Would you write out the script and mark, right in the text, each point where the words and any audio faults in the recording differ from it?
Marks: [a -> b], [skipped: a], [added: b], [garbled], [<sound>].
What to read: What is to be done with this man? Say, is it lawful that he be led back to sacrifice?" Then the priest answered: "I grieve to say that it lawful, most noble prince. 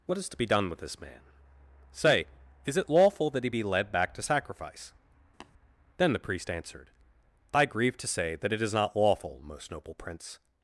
What is to be done with this man? Say, is it lawful that he be led back to sacrifice?" [tap] Then the priest answered: "I grieve to say that it [added: is not] lawful, most noble prince.